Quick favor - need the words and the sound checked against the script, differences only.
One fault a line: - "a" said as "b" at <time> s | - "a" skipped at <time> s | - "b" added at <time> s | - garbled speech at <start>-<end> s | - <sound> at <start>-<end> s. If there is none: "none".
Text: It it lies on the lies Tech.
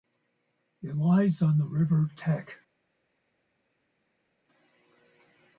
- "it" skipped at 1.0 s
- "lies" said as "river" at 1.6 s